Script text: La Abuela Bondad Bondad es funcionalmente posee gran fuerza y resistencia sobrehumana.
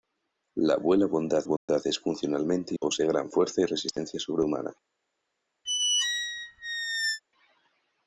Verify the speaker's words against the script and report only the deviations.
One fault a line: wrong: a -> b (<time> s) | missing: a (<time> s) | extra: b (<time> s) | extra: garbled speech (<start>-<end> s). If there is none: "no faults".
no faults